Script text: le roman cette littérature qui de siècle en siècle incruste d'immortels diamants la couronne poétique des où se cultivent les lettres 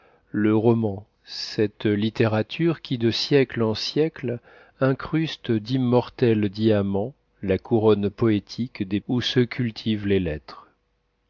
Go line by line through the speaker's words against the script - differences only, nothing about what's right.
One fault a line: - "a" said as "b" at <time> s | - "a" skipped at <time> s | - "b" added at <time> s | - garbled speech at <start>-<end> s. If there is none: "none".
none